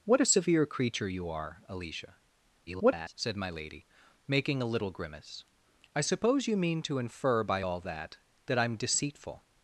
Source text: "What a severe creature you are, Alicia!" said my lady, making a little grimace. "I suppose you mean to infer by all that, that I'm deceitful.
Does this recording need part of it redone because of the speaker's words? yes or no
yes